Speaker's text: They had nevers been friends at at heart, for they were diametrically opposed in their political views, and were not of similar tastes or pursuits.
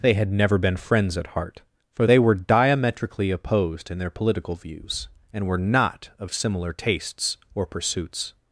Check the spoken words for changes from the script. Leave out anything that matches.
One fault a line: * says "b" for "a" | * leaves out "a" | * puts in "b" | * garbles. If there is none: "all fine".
* says "never" for "nevers"
* leaves out "at"